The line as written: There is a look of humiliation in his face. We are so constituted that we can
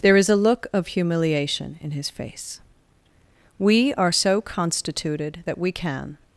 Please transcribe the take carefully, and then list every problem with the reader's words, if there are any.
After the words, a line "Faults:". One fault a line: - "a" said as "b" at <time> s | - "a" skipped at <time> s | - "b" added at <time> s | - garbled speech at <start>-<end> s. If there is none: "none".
There is a look of humiliation in his face. We are so constituted that we can
Faults:
none